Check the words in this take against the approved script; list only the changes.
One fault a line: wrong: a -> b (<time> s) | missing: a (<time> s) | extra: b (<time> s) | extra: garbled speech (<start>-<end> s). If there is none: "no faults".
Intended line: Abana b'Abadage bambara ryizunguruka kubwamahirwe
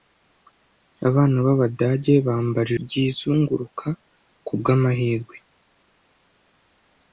no faults